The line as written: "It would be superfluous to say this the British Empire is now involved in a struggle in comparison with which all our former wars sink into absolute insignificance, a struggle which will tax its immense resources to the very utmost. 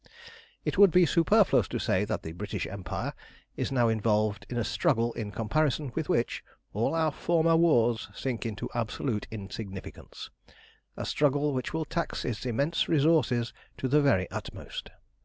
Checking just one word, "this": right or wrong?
wrong